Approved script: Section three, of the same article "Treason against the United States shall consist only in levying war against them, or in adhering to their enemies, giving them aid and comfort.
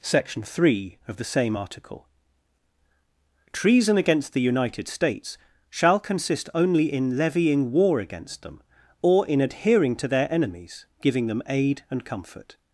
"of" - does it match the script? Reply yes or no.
yes